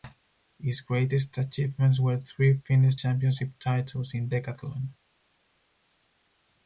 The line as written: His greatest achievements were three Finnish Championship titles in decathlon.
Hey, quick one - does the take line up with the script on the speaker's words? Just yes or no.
yes